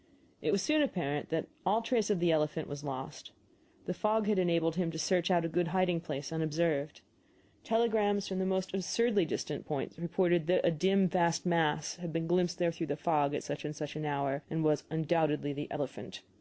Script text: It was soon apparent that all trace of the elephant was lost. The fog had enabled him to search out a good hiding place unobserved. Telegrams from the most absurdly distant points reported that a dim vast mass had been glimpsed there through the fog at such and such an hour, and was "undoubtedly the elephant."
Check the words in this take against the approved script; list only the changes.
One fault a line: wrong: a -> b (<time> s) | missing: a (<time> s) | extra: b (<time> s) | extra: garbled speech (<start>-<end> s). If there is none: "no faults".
no faults